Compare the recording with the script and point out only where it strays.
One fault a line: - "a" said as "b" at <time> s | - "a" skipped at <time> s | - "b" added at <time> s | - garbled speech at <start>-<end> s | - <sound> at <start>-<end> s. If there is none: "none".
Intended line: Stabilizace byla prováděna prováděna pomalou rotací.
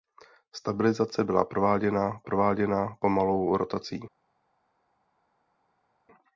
none